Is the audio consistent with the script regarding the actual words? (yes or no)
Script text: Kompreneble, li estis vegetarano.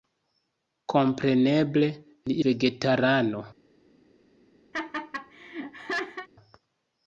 no